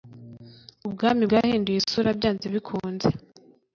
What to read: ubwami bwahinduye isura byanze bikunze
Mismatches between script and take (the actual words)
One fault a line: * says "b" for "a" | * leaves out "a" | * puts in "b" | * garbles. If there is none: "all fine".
all fine